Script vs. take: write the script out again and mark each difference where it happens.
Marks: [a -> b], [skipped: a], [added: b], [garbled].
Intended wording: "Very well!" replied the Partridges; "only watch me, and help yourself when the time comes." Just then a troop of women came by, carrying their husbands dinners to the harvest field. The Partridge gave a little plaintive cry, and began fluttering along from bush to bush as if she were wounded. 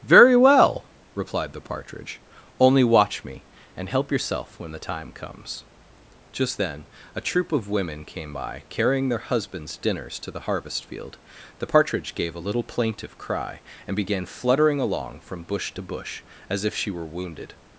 "Very well!" replied the [Partridges; -> Partridge] "only watch me, and help yourself when the time comes." Just then a troop of women came by, carrying their husbands dinners to the harvest field. The Partridge gave a little plaintive cry, and began fluttering along from bush to bush as if she were wounded.